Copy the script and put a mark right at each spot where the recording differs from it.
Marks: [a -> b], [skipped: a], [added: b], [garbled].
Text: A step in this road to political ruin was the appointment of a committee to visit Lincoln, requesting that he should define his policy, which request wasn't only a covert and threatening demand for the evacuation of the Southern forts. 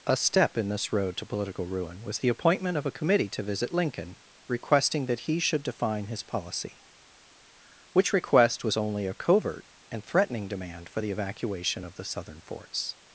A step in this road to political ruin was the appointment of a committee to visit Lincoln, requesting that he should define his policy, which request [wasn't -> was] only a covert and threatening demand for the evacuation of the Southern forts.